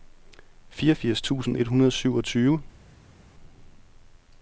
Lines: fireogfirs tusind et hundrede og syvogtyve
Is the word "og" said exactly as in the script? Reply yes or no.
yes